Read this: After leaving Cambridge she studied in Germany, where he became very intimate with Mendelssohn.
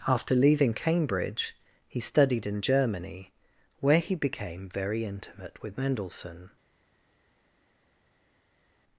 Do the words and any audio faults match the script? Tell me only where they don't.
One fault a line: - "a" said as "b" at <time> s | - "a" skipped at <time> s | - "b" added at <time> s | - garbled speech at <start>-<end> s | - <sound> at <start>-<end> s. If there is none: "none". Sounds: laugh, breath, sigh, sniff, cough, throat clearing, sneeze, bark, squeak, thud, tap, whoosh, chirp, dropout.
- "she" said as "he" at 1.9 s